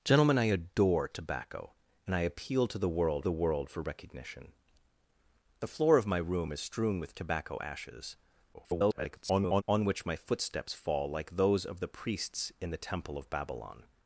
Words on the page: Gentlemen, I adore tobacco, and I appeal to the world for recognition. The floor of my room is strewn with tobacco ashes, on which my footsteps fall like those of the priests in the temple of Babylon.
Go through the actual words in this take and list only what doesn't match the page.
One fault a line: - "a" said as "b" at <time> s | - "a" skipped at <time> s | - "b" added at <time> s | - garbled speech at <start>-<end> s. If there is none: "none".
- "the world" added at 3.2 s
- garbled speech at 8.5-9.6 s